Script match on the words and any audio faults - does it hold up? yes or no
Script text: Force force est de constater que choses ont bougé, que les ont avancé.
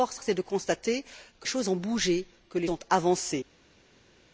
yes